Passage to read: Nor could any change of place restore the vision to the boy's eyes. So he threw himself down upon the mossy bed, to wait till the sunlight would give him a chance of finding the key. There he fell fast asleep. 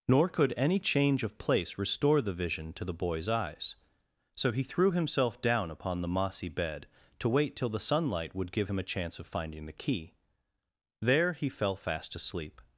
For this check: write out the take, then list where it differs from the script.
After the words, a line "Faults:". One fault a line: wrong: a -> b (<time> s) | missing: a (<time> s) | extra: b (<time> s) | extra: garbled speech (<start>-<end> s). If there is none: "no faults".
Nor could any change of place restore the vision to the boy's eyes. So he threw himself down upon the mossy bed, to wait till the sunlight would give him a chance of finding the key. There he fell fast asleep.
Faults:
no faults